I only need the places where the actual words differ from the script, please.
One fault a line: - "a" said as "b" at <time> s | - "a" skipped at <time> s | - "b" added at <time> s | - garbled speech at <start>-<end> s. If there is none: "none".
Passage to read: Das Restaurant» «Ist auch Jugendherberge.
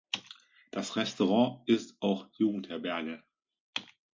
none